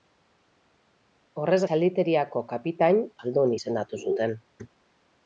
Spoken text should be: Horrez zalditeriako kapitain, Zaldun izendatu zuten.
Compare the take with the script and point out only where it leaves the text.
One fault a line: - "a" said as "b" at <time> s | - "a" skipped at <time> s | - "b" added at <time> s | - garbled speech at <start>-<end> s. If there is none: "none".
none